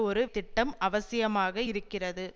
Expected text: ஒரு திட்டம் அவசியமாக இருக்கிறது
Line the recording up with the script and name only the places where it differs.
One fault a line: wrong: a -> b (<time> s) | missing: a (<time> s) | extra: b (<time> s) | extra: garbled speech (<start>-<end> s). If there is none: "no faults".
no faults